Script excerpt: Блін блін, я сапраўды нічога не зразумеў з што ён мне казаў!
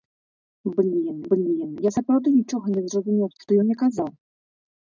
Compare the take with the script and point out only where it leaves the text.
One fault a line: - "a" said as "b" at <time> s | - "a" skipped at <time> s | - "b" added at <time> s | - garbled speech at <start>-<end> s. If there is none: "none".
none